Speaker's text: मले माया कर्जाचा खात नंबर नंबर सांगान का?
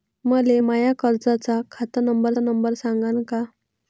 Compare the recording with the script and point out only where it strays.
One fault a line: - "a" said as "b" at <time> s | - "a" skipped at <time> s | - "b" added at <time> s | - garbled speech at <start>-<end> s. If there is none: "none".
none